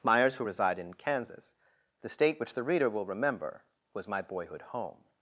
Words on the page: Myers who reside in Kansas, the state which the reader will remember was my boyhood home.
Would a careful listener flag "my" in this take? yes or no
no